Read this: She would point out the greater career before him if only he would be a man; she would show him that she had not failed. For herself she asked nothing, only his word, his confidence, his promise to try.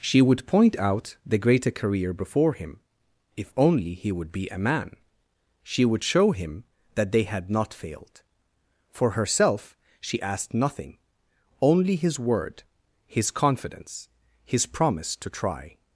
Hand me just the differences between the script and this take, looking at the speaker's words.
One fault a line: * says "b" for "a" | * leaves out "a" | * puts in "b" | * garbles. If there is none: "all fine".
* says "they" for "she"